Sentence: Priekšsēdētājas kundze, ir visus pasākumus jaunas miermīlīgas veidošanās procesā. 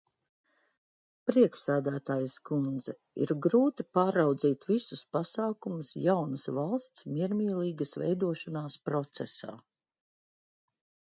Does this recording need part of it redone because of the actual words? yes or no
yes